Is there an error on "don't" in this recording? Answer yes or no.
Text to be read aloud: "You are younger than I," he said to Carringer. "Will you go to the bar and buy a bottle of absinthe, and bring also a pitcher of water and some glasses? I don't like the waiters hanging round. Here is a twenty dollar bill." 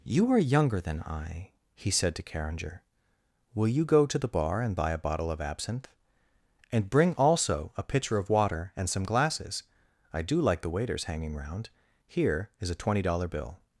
yes